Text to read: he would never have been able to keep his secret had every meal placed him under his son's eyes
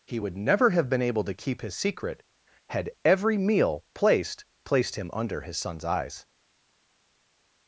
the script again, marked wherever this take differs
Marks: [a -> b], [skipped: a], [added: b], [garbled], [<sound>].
he would never have been able to keep his secret had every meal placed [added: placed] him under his son's eyes